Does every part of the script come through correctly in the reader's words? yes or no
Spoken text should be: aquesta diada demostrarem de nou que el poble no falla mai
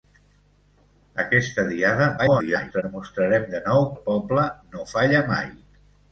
no